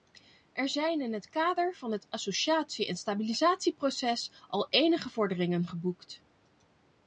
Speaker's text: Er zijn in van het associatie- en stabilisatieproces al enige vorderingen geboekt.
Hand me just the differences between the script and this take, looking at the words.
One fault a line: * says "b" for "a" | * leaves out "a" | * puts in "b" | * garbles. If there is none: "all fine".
* puts in "het kader"